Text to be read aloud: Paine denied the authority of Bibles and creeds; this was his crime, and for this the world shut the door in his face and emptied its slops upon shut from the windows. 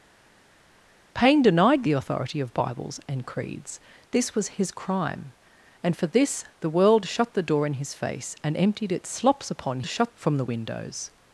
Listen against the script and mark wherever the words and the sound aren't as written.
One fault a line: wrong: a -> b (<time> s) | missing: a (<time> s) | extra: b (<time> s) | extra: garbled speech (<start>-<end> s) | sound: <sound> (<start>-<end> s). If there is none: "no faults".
no faults